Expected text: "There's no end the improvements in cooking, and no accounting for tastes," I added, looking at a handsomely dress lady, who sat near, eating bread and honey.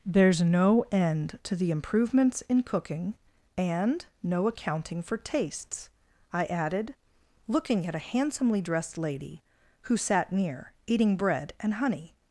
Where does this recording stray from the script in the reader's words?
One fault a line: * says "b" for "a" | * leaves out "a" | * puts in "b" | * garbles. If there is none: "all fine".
* puts in "to"
* says "dressed" for "dress"